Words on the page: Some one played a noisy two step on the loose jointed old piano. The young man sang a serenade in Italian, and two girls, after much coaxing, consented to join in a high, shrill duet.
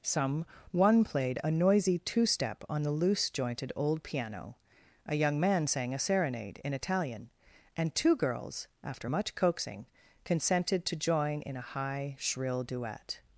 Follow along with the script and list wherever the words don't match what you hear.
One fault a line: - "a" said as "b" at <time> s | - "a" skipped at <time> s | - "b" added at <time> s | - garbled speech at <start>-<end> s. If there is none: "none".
- "The" said as "A" at 5.1 s